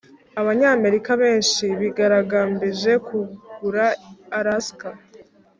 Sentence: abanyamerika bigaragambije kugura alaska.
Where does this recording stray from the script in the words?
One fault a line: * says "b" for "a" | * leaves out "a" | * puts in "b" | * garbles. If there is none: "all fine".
* puts in "benshi"